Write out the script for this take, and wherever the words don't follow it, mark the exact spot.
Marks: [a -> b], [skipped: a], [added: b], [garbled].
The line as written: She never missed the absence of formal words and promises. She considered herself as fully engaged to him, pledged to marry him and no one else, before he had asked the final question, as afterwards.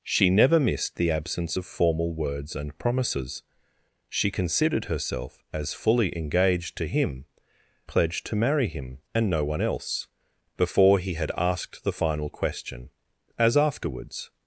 She never missed the absence of formal words and promises. She considered herself as fully engaged to him, pledged to marry him and no one else, before he had asked the final question, as afterwards.